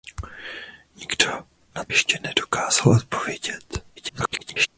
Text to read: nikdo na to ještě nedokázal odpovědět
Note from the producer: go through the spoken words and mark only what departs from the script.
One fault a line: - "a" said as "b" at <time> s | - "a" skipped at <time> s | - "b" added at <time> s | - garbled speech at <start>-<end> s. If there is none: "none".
- "to" skipped at 1.8 s
- garbled speech at 4.0-4.7 s